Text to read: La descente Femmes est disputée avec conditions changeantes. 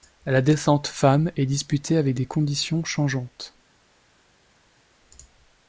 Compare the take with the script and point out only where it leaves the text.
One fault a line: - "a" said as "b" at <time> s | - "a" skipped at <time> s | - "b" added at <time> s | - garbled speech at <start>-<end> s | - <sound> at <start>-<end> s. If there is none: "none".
- "des" added at 2.1 s